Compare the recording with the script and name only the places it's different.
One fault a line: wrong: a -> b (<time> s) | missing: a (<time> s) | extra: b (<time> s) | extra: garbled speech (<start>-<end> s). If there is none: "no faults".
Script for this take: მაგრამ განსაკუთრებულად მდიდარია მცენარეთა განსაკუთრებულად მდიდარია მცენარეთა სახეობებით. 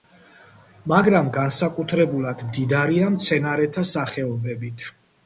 missing: განსაკუთრებულად მდიდარია მცენარეთა (3.9 s)